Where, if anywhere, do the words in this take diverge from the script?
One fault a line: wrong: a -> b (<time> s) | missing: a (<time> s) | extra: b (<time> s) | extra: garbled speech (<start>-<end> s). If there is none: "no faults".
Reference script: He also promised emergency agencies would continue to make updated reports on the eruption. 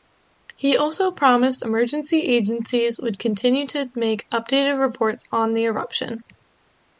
no faults